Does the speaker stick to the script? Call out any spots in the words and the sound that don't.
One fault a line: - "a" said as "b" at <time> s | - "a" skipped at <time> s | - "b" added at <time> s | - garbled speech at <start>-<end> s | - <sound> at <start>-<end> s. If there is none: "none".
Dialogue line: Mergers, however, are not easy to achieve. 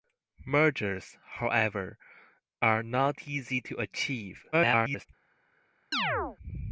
- garbled speech at 4.5-5.1 s
- chirp at 5.9-6.4 s